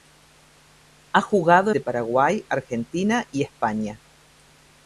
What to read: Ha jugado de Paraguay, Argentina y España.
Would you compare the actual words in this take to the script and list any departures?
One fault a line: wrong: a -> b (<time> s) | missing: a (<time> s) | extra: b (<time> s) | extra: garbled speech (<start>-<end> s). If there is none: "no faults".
no faults